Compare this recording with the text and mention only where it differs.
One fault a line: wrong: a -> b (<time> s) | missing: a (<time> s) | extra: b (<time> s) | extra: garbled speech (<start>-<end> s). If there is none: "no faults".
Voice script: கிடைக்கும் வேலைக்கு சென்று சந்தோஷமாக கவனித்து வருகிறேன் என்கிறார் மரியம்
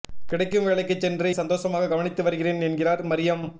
no faults